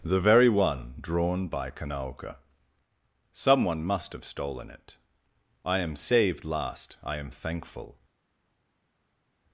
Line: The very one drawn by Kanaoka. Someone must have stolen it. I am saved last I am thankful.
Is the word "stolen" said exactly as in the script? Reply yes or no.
yes